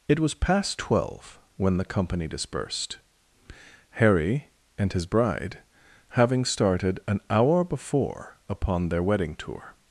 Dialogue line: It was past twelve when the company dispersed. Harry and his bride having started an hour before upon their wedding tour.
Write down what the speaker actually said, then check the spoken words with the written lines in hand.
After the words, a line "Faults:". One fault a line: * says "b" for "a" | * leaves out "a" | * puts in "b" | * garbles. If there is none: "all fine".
It was past twelve when the company dispersed. Harry and his bride having started an hour before upon their wedding tour.
Faults:
all fine